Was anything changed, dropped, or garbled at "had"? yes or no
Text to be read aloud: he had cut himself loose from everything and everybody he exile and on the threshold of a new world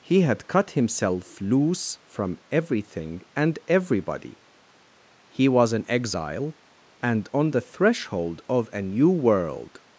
no